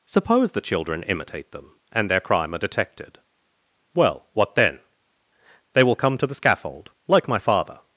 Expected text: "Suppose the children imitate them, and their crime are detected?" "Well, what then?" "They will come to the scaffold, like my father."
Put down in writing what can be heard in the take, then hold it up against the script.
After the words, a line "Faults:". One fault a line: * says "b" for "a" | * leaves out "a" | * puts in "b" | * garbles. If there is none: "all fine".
"Suppose the children imitate them, and their crime are detected?" "Well, what then?" "They will come to the scaffold, like my father."
Faults:
all fine